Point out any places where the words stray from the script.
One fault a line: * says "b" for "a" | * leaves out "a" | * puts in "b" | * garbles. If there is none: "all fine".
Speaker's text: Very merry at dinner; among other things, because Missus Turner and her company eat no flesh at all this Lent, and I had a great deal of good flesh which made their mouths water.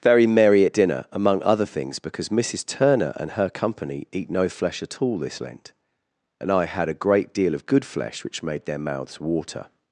all fine